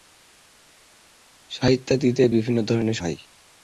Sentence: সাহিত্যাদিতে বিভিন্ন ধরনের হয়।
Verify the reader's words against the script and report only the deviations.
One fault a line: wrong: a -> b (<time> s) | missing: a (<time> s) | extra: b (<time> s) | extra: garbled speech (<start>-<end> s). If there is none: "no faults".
no faults